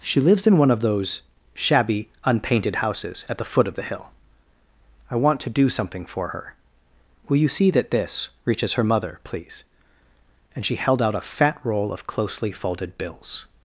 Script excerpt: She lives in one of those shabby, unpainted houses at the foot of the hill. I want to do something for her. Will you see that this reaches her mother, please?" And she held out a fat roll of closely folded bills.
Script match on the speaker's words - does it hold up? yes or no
yes